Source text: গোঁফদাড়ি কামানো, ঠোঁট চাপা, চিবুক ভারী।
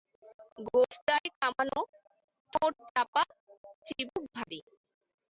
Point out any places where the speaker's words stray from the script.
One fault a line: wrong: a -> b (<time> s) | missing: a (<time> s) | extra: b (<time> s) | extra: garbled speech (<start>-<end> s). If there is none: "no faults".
no faults